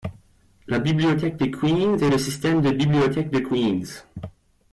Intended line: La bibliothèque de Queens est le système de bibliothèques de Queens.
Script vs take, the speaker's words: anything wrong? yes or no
no